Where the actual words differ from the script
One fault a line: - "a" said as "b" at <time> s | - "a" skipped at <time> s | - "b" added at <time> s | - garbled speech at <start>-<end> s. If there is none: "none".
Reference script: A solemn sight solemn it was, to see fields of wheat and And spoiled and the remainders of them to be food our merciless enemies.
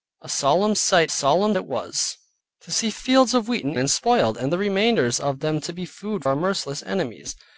none